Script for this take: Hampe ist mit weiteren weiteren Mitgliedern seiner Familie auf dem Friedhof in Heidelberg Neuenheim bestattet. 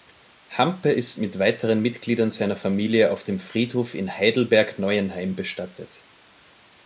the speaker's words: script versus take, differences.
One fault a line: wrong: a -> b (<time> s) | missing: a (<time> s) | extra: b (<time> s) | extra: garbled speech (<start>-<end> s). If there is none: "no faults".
missing: weiteren (1.8 s)